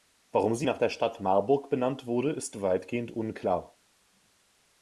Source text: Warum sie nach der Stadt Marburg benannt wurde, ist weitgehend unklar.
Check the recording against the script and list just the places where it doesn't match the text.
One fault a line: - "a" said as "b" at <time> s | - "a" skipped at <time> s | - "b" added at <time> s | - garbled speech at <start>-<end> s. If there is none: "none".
none